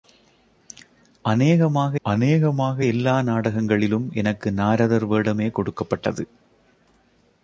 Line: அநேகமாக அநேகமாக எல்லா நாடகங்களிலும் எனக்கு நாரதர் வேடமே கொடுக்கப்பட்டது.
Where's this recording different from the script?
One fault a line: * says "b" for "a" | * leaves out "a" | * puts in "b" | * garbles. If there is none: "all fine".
all fine